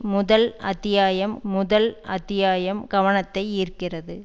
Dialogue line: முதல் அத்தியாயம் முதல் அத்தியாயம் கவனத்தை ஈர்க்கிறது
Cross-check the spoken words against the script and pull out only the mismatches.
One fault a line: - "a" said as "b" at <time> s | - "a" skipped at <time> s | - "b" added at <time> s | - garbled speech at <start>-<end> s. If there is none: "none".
none